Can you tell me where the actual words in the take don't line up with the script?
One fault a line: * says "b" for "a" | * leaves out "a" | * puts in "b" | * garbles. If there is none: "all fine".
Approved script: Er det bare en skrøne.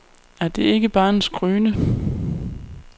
* puts in "ikke"